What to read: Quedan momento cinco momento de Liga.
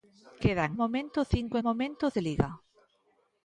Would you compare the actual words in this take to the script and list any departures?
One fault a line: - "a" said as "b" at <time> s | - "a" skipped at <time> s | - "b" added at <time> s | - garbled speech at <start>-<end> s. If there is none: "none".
none